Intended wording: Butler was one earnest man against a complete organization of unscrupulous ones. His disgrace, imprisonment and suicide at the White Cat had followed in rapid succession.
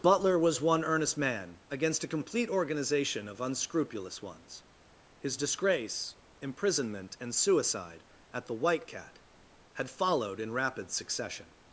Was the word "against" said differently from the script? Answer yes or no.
no